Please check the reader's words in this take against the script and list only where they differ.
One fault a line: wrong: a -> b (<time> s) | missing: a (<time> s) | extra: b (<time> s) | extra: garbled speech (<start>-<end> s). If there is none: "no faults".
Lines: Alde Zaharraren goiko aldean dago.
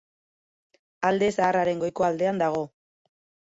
no faults